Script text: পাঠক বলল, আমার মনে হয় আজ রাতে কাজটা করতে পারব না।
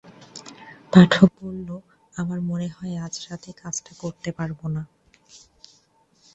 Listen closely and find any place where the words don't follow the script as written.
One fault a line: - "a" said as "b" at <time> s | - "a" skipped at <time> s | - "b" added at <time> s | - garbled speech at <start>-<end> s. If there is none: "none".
none